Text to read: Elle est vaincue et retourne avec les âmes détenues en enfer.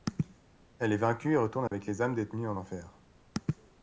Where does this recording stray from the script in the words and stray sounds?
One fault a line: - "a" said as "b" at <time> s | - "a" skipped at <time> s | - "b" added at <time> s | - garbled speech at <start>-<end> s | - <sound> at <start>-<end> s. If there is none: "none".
- dropout at 1.7-1.7 s